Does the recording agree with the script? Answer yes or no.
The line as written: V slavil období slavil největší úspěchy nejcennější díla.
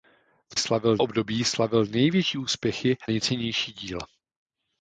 yes